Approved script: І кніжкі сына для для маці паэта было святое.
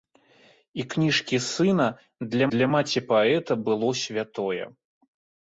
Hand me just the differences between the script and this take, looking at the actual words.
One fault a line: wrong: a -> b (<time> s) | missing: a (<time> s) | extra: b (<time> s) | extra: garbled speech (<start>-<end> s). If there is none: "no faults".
no faults